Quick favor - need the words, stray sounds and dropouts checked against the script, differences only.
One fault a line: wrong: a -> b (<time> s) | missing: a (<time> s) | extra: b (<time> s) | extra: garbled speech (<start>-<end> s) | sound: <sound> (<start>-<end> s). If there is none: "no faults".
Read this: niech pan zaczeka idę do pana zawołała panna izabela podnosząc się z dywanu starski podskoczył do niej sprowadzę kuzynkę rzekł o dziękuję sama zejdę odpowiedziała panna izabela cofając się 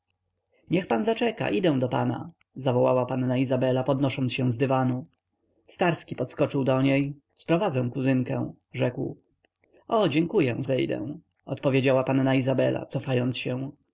missing: sama (10.6 s)